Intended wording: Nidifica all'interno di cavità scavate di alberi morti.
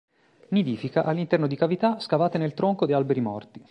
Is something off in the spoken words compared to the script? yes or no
yes